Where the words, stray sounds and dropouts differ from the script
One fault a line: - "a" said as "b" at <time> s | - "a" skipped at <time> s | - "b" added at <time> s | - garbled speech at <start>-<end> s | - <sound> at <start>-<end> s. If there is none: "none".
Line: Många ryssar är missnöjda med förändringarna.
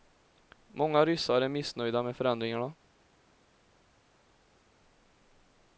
none